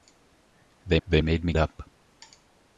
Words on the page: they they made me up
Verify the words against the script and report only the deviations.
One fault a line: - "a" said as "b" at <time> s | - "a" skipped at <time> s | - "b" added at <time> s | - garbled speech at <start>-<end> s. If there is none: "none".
none